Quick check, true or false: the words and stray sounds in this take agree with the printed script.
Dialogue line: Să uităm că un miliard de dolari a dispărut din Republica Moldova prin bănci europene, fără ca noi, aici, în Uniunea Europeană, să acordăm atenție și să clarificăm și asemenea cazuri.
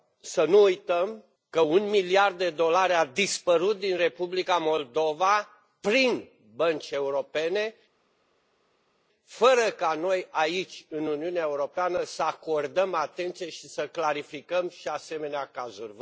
false